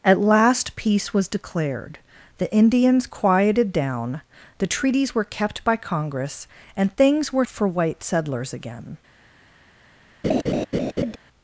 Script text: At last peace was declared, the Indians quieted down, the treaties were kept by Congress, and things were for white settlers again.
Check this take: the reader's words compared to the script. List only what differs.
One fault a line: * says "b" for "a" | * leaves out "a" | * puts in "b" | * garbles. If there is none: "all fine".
all fine